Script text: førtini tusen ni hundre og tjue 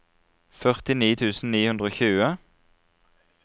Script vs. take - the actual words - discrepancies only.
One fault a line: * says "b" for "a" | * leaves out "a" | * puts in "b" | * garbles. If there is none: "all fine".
all fine